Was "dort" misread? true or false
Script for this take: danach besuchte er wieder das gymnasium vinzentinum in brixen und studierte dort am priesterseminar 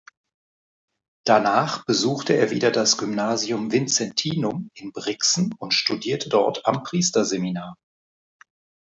false